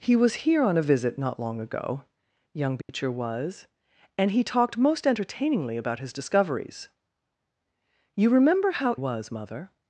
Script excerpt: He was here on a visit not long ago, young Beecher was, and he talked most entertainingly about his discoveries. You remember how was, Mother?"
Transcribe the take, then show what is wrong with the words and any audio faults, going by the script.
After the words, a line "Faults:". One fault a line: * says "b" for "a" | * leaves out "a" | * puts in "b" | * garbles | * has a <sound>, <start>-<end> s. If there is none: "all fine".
He was here on a visit not long ago, young Beecher was, and he talked most entertainingly about his discoveries. You remember how was, Mother?"
Faults:
* has a dropout, 2.8-2.9 s